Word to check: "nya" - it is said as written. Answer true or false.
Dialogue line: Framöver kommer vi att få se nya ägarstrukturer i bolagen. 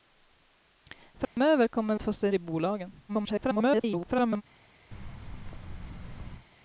false